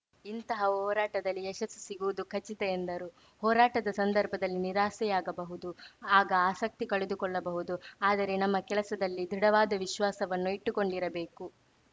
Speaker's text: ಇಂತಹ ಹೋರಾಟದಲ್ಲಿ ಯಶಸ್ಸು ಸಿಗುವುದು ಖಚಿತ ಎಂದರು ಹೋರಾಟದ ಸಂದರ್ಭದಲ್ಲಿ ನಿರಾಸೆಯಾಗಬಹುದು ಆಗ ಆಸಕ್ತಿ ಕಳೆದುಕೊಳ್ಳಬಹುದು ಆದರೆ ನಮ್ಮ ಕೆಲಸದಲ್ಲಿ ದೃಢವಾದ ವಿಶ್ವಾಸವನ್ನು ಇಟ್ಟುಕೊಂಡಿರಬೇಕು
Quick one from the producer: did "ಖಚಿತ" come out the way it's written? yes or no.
yes